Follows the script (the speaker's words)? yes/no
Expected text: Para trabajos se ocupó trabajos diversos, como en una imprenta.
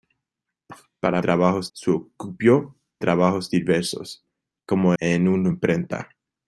yes